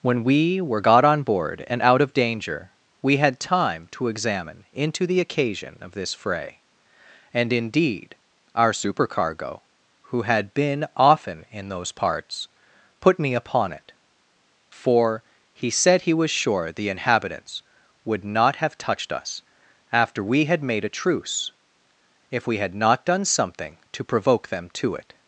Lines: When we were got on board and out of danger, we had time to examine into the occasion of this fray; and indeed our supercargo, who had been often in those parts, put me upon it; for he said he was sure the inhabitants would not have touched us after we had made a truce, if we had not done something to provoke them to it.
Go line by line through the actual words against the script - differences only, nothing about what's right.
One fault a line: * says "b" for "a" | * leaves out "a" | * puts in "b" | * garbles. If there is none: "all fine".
all fine